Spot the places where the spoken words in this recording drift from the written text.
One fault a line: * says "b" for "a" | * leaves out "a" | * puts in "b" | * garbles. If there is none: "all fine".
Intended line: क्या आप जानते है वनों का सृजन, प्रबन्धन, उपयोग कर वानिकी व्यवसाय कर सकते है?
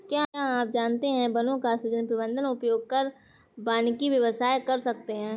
all fine